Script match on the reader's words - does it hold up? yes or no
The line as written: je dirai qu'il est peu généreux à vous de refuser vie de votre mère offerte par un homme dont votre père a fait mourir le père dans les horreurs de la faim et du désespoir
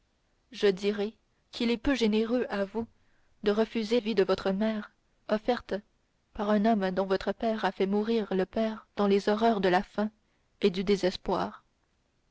yes